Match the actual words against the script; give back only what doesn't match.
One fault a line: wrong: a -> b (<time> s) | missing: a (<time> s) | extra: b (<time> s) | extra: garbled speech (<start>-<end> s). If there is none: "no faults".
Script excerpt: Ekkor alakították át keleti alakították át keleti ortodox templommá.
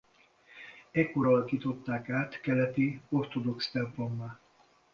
missing: alakították át keleti (3.0 s)